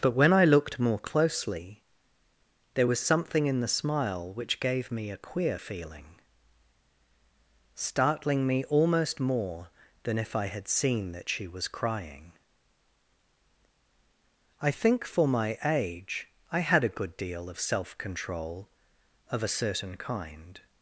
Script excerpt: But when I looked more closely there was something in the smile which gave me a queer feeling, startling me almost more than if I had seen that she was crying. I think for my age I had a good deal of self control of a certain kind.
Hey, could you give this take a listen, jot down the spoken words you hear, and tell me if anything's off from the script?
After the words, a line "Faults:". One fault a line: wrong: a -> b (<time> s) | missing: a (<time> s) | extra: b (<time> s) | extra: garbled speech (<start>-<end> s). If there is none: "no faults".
But when I looked more closely there was something in the smile which gave me a queer feeling, startling me almost more than if I had seen that she was crying. I think for my age I had a good deal of self control of a certain kind.
Faults:
no faults